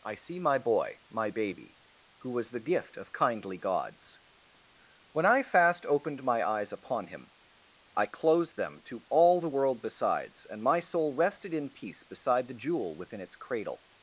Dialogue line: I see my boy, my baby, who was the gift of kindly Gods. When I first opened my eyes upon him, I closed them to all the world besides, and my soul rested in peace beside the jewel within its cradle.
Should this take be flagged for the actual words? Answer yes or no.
yes